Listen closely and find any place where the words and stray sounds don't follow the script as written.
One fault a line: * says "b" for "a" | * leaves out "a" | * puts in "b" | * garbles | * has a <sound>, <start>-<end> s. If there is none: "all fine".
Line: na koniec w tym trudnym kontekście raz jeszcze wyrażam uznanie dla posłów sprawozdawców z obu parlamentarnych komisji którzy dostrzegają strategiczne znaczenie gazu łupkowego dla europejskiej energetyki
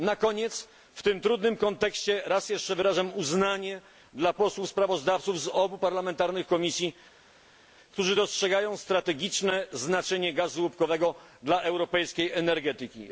all fine